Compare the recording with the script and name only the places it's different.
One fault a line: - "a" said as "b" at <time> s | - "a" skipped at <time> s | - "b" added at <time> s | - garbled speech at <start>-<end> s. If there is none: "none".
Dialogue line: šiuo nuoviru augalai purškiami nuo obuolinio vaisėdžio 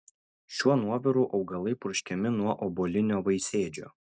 none